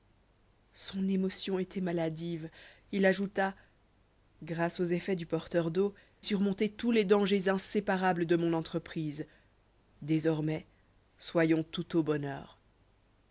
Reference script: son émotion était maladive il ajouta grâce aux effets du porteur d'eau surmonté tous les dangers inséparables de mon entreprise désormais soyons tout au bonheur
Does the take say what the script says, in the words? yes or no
yes